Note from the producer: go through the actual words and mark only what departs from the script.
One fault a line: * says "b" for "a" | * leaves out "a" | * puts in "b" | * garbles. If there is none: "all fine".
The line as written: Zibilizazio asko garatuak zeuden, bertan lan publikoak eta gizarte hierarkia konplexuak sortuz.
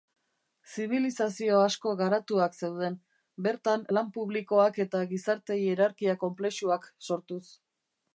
all fine